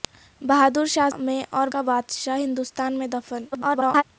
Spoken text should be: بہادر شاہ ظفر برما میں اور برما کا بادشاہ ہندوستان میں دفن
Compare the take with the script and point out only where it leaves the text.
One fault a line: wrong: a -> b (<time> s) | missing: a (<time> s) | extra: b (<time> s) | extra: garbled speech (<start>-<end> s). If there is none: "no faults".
missing: ظفر برما (1.1 s)
missing: برما (1.7 s)
extra: garbled speech (3.5-4.0 s)